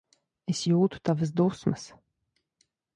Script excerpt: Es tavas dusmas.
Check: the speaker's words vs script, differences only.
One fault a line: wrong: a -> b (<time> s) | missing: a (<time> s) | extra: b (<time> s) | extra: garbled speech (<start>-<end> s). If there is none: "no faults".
extra: jūtu (0.7 s)